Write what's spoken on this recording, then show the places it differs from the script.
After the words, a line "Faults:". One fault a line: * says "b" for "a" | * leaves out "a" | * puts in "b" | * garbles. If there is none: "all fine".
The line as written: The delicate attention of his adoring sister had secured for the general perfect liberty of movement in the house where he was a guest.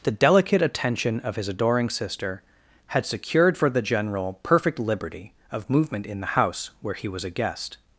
The delicate attention of his adoring sister had secured for the general perfect liberty of movement in the house where he was a guest.
Faults:
all fine